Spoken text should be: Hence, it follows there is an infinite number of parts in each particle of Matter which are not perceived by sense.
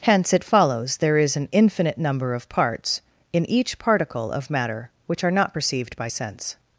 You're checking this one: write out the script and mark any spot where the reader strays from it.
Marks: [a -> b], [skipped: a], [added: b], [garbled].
Hence, it follows there is an infinite number of parts in each particle of Matter which are not perceived by sense.